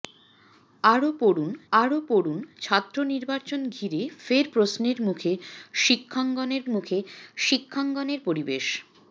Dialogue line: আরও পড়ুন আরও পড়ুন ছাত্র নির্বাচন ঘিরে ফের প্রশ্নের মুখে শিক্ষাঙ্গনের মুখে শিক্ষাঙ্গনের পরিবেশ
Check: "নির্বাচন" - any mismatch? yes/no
no